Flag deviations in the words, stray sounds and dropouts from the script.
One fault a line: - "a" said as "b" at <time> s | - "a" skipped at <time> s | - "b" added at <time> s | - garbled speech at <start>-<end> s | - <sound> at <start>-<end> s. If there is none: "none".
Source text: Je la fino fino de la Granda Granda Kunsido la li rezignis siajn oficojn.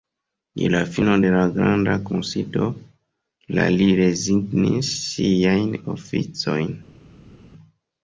- "fino" skipped at 1.2 s
- "Granda" skipped at 1.9 s